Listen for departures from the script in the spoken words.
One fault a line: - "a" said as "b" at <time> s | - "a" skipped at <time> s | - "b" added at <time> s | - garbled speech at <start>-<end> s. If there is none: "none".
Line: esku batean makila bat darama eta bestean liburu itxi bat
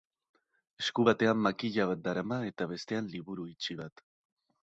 none